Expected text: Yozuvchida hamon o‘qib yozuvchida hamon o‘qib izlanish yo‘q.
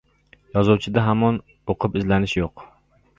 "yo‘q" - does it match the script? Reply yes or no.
yes